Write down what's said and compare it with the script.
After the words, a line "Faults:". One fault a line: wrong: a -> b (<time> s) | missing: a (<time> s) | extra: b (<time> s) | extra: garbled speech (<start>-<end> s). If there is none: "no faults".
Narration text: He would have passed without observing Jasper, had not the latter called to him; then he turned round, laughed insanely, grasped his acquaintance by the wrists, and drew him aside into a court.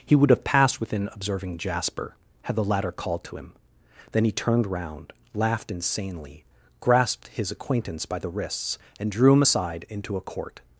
He would have passed within observing Jasper, had the latter called to him; then he turned round, laughed insanely, grasped his acquaintance by the wrists, and drew him aside into a court.
Faults:
wrong: without -> within (0.8 s)
missing: not (2.5 s)